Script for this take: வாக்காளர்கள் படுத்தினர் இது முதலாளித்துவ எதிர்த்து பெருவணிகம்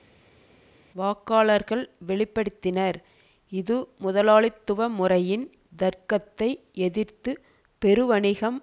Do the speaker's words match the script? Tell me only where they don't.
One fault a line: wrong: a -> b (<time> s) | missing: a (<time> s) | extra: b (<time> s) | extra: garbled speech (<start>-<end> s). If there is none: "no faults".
extra: வெளி (2.0 s)
extra: முறையின் தர்க்கத்தை (4.9 s)